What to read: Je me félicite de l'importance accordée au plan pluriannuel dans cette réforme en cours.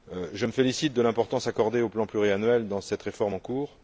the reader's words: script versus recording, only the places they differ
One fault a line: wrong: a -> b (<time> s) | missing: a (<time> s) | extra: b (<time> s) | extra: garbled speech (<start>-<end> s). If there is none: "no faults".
no faults